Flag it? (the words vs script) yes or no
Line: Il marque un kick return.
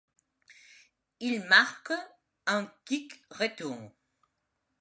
no